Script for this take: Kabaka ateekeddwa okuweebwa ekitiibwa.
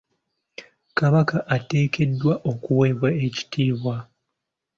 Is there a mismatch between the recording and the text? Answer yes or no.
no